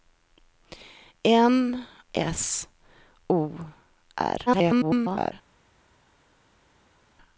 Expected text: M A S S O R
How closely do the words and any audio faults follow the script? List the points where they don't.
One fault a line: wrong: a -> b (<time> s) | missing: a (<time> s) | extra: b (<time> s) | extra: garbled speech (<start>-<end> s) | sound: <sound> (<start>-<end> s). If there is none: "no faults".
missing: A S (1.9 s)
extra: garbled speech (4.5-5.3 s)